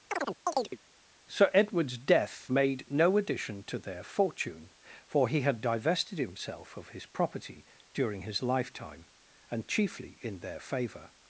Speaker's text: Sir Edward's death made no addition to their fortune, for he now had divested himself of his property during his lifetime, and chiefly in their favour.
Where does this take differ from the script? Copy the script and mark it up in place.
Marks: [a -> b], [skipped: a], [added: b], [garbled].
Sir Edward's death made no addition to their fortune, for he [skipped: now] had divested himself of his property during his lifetime, and chiefly in their favour.